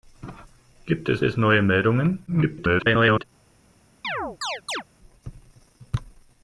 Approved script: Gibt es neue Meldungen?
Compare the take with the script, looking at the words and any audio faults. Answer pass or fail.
fail